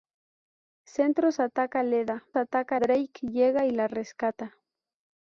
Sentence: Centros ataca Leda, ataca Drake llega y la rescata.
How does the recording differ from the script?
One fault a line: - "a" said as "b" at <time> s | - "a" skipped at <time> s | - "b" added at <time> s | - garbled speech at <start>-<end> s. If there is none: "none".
none